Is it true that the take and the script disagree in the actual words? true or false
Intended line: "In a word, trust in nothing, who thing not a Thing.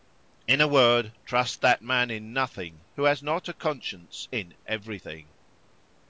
true